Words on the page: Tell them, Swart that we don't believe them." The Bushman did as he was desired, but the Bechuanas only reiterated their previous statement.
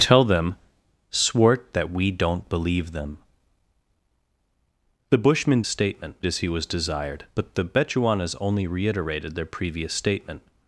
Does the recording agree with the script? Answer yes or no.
no